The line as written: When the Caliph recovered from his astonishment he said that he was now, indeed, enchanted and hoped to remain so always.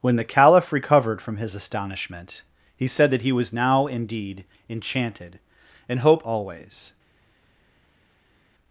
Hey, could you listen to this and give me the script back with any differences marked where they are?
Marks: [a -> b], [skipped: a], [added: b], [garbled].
When the Caliph recovered from his astonishment he said that he was now, indeed, enchanted and hoped [skipped: to remain so] always.